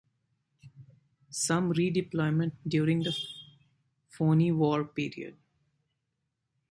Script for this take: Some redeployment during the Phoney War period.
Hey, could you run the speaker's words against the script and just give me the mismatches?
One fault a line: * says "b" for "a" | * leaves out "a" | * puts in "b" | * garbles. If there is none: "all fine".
all fine